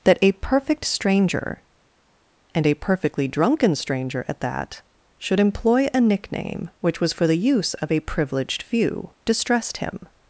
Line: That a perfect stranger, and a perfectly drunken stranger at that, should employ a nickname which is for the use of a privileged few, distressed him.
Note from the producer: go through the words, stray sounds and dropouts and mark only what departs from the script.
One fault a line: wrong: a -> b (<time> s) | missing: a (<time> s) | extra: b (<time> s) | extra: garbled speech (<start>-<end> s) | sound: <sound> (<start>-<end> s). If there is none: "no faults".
wrong: is -> was (7.0 s)